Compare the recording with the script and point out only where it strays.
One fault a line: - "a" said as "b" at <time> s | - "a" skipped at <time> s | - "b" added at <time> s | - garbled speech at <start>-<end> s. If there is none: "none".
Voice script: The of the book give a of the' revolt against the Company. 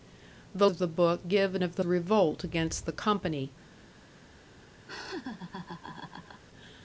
none